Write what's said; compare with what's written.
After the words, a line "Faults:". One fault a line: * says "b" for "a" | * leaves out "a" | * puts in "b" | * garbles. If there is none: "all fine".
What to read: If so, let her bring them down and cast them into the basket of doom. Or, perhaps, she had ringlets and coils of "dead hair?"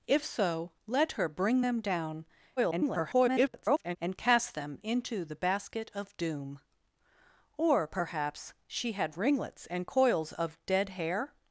If so, let her bring them down [garbled] and cast them into the basket of doom. Or, perhaps, she had ringlets and coils of "dead hair?"
Faults:
* garbles